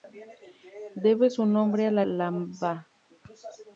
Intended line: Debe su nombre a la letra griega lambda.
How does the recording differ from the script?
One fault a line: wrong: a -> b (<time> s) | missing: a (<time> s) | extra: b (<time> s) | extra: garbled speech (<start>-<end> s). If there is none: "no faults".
missing: letra griega (2.1 s)